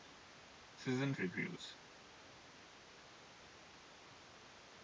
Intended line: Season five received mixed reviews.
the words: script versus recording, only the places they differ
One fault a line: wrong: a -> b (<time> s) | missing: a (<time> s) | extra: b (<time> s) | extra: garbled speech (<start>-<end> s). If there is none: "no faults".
missing: five received mixed (1.1 s)